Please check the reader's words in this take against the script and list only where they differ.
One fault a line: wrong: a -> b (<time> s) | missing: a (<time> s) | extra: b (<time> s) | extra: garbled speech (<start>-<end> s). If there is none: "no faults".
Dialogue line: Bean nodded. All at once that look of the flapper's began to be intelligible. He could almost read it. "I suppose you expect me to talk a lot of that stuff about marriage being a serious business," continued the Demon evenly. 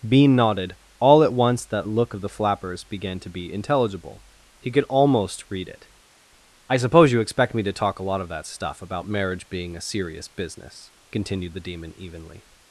no faults